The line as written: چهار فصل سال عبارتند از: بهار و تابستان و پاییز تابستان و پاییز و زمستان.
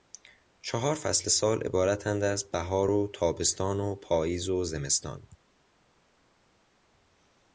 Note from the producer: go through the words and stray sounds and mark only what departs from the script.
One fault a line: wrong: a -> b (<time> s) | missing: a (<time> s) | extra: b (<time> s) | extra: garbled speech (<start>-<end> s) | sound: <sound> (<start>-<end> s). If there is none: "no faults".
missing: تابستان و پاییز (4.5 s)